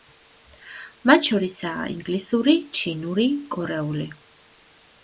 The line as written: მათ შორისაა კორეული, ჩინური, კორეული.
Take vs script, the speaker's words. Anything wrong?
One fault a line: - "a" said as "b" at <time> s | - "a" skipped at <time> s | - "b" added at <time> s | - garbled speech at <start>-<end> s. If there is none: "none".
- "კორეული" said as "ინგლისური" at 1.9 s